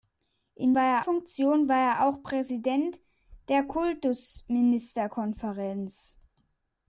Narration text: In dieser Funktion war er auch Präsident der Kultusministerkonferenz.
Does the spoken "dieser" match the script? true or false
false